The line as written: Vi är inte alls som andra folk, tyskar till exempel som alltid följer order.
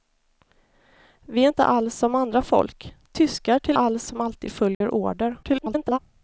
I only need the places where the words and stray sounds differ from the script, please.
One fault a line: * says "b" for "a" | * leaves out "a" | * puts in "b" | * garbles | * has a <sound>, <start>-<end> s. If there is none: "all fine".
* says "alls" for "exempel"
* has a dropout, 4.7-4.8 s
* garbles